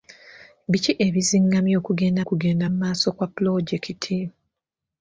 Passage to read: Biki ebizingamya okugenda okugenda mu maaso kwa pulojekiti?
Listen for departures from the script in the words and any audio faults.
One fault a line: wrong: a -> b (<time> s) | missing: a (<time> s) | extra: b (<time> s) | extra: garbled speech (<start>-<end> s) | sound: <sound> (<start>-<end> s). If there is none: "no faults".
no faults